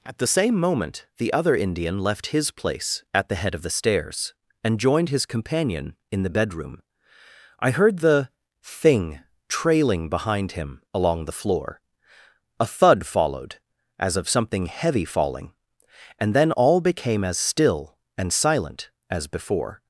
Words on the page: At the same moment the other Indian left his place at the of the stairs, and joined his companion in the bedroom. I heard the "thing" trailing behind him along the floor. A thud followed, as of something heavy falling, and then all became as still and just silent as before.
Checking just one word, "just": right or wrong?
wrong